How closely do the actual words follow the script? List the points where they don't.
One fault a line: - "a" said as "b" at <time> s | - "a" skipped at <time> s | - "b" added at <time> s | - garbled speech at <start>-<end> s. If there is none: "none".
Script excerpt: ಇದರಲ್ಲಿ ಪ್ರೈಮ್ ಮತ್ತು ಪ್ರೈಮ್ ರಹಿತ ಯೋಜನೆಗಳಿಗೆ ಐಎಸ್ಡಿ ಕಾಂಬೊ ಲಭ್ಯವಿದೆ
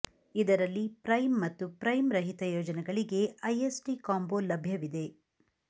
none